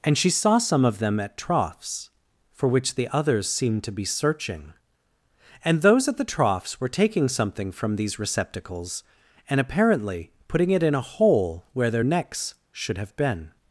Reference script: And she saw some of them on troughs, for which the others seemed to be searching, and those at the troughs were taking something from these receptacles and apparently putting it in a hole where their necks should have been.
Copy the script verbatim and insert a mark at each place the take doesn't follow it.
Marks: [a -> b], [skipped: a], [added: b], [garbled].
And she saw some of them [on -> at] troughs, for which the others seemed to be searching, and those at the troughs were taking something from these receptacles and apparently putting it in a hole where their necks should have been.